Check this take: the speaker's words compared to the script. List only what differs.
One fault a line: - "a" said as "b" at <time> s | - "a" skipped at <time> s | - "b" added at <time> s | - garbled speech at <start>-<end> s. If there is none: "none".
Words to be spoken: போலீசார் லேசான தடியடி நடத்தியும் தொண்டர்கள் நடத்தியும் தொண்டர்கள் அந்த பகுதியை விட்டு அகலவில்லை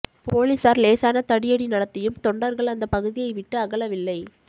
- "நடத்தியும் தொண்டர்கள்" skipped at 2.7 s